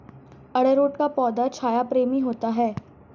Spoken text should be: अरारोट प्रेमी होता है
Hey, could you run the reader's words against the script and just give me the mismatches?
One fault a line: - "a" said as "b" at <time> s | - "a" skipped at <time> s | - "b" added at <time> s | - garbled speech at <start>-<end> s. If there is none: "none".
- "का पौधा छाया" added at 0.9 s